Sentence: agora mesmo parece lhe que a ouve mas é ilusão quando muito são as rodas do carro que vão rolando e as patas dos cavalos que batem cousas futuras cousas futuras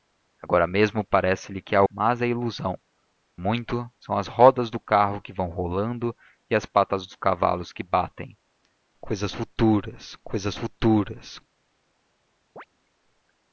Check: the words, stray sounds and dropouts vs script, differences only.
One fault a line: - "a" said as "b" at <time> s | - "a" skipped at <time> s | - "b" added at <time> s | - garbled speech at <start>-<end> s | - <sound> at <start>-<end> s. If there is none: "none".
- "ouve" skipped at 1.8 s
- "quando" skipped at 2.8 s
- chirp at 12.6-12.7 s